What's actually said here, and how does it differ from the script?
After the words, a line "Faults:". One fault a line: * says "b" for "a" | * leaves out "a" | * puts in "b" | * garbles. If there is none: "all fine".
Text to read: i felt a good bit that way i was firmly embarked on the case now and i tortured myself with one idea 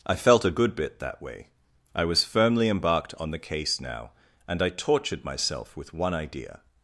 i felt a good bit that way i was firmly embarked on the case now and i tortured myself with one idea
Faults:
all fine